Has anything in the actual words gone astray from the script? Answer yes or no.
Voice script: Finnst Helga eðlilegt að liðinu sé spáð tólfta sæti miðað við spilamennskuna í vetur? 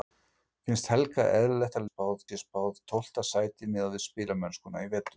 yes